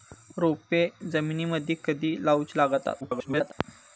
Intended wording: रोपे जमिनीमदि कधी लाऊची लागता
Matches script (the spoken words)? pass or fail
fail